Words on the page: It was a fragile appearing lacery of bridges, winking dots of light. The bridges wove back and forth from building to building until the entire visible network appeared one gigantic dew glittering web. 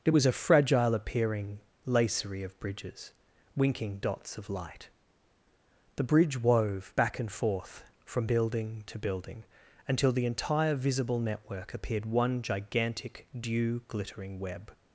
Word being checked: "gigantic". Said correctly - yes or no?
yes